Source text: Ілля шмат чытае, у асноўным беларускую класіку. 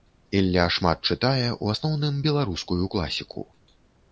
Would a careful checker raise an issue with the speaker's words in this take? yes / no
no